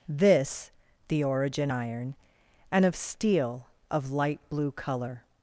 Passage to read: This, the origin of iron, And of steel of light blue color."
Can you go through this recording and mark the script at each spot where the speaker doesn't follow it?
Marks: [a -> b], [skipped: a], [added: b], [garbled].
This, the origin [skipped: of] iron, And of steel of light blue color."